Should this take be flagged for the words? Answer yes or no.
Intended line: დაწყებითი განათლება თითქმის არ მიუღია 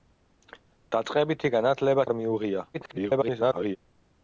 yes